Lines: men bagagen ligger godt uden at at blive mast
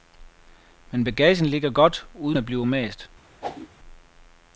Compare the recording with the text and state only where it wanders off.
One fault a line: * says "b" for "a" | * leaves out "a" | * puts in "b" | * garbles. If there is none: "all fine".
* leaves out "at"